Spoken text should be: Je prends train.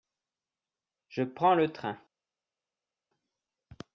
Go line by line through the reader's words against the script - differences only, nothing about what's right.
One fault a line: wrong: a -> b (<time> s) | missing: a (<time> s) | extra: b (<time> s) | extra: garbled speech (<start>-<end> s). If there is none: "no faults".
extra: le (1.5 s)